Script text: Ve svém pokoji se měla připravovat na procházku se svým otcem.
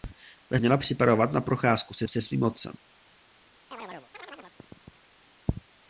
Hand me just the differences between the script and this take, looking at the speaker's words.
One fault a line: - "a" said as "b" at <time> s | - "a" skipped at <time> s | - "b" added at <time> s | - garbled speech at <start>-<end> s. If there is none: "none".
- "svém pokoji se" skipped at 0.6 s
- "se" added at 2.1 s